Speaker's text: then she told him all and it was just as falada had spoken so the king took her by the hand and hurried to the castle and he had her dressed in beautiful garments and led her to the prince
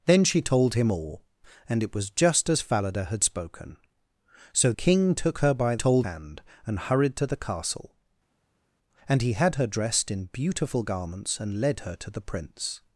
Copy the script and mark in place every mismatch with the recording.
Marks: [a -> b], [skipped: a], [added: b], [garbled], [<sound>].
then she told him all and it was just as falada had spoken so [skipped: the] king took her by [the -> told] hand and hurried to the castle and he had her dressed in beautiful garments and led her to the prince